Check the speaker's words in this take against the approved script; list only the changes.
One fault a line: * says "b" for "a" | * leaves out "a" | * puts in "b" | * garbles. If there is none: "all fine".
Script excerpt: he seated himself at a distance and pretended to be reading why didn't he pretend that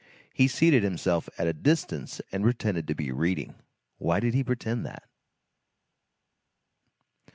* says "did" for "didn't"